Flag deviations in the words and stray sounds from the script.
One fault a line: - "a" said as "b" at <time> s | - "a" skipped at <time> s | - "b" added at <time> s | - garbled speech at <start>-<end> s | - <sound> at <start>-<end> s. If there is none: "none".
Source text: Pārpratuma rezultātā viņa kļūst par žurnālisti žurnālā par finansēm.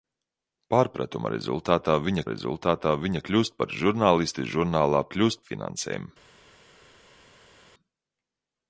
- "rezultātā viņa" added at 2.3 s
- "par" said as "kļūst" at 5.1 s